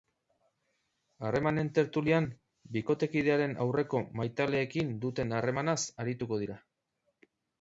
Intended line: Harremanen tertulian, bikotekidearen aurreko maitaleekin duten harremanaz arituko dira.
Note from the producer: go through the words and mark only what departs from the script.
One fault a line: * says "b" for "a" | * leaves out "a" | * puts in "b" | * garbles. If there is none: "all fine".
all fine